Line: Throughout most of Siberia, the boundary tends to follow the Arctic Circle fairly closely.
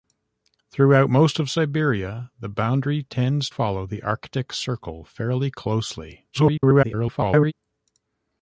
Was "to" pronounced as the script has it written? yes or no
no